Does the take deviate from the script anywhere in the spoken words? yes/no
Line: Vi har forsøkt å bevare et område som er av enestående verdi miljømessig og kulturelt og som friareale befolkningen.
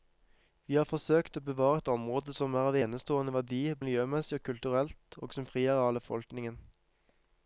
no